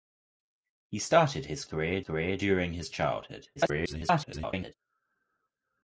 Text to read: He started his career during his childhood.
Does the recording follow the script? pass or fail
fail